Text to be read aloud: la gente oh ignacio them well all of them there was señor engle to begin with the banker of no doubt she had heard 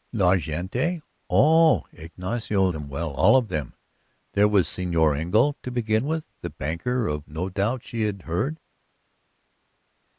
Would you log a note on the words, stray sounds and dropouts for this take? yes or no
no